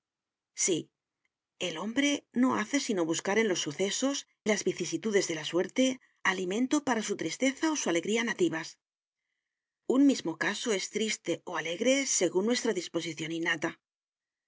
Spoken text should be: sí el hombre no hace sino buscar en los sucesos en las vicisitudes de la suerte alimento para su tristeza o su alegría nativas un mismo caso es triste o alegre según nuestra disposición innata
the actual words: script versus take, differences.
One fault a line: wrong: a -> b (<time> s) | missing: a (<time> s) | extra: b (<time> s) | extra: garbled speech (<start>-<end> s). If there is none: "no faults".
missing: en (4.2 s)